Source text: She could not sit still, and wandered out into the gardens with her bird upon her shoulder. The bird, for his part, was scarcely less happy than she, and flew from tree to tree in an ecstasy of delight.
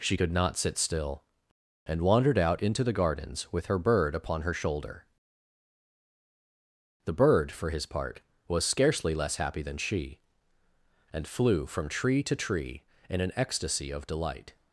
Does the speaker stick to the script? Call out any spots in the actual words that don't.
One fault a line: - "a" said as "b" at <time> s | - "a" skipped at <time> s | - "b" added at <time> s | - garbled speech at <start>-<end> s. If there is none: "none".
none